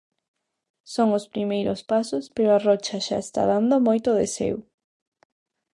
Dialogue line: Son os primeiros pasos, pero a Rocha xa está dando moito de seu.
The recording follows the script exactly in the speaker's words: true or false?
true